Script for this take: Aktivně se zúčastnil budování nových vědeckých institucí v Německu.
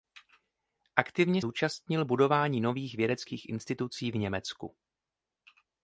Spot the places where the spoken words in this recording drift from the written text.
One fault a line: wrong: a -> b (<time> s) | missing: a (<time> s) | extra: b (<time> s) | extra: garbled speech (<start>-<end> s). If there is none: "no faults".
missing: se (1.4 s)